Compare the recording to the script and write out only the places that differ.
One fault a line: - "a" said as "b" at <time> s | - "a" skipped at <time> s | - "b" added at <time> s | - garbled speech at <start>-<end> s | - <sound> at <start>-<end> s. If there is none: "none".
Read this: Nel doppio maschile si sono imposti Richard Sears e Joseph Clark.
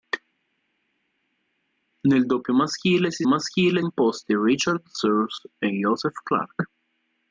- "sono" said as "maschile" at 3.3 s